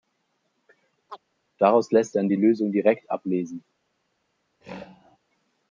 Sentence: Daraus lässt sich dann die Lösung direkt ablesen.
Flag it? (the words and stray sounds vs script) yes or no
yes